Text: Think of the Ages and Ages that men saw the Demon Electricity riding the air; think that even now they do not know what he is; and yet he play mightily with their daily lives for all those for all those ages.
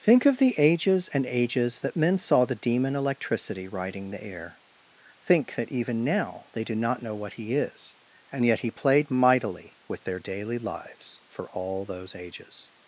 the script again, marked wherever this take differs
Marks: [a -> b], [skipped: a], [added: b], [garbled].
Think of the Ages and Ages that men saw the Demon Electricity riding the air; think that even now they do not know what he is; and yet he [play -> played] mightily with their daily lives for all those [skipped: for all those] ages.